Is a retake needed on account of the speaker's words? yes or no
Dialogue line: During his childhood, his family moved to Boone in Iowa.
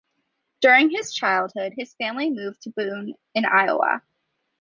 no